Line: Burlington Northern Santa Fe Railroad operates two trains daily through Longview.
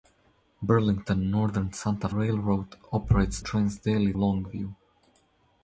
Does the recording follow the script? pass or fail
fail